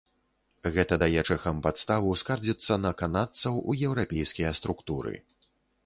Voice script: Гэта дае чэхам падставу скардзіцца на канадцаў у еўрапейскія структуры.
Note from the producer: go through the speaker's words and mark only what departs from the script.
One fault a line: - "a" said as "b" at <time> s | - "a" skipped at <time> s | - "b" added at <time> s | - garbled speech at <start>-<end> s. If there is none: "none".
none